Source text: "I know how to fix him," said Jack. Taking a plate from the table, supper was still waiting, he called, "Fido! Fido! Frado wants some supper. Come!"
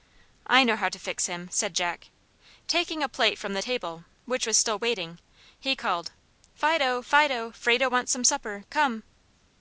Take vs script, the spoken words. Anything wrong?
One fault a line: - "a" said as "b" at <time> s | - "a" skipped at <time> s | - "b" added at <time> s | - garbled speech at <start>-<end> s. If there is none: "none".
- "supper" said as "which" at 4.3 s